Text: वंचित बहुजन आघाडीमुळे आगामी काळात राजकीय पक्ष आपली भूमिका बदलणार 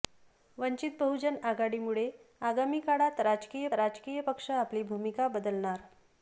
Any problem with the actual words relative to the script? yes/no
yes